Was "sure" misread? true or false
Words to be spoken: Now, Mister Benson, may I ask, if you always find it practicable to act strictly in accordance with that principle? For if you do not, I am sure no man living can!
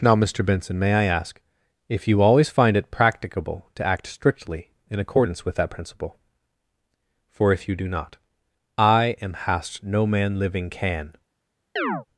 true